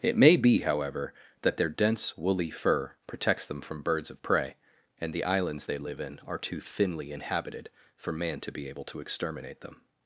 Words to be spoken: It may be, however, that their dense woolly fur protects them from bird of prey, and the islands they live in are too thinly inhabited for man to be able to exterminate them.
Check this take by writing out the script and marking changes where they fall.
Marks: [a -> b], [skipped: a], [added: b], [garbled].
It may be, however, that their dense woolly fur protects them from [bird -> birds] of prey, and the islands they live in are too thinly inhabited for man to be able to exterminate them.